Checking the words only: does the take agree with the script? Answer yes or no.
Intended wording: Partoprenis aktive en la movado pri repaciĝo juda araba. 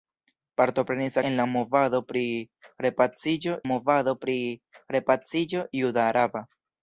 no